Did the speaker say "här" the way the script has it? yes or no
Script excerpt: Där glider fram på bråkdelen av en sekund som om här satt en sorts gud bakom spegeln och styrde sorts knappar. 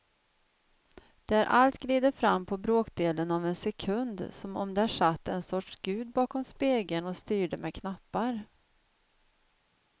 no